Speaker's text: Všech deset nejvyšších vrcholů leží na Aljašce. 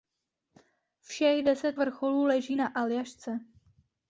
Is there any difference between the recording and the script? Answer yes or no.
yes